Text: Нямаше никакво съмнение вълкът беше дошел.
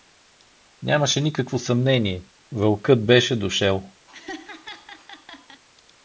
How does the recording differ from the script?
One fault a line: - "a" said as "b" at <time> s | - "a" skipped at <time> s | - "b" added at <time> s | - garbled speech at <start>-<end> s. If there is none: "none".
none